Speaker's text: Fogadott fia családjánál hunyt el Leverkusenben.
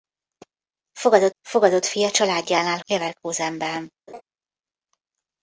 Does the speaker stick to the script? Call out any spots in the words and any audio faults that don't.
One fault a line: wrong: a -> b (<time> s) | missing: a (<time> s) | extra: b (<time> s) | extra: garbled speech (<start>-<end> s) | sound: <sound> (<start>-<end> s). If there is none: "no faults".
extra: fogadott (1.4 s)
missing: hunyt el (2.8 s)
sound: laugh (4.1-4.2 s)